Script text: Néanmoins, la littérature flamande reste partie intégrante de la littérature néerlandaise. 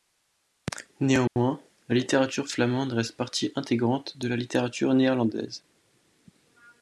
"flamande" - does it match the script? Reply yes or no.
yes